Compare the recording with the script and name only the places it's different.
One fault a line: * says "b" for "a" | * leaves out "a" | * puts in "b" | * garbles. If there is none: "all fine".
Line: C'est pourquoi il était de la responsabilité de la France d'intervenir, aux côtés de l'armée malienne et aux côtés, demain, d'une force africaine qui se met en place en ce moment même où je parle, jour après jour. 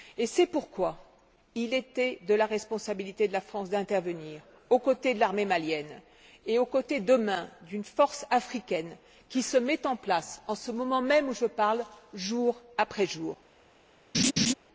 all fine